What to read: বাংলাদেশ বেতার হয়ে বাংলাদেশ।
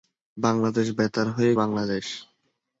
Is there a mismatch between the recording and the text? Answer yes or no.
no